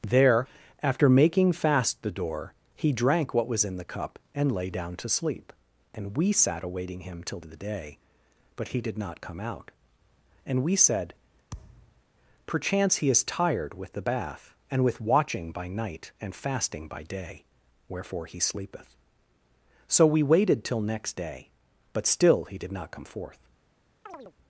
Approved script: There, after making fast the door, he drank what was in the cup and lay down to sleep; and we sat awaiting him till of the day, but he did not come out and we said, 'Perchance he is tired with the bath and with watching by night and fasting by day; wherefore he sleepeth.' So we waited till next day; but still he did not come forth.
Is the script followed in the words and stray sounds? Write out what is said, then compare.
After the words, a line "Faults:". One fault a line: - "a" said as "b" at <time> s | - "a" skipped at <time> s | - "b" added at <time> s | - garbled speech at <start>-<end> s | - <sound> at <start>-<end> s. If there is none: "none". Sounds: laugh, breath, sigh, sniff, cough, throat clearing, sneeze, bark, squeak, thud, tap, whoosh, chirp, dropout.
There, after making fast the door, he drank what was in the cup and lay down to sleep; and we sat awaiting him till of the day, but he did not come out and we said, 'Perchance he is tired with the bath and with watching by night and fasting by day; wherefore he sleepeth.' So we waited till next day; but still he did not come forth.
Faults:
- thud at 11.5-12.0 s
- chirp at 24.1-24.3 s